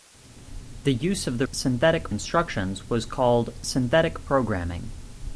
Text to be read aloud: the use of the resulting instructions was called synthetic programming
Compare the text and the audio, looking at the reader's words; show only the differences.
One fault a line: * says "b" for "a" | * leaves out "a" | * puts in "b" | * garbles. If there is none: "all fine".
* says "synthetic" for "resulting"